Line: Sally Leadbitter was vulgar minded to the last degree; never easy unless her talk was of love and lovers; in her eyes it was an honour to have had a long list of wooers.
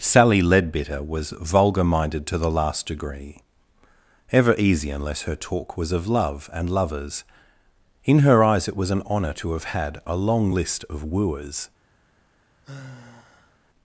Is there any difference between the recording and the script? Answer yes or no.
yes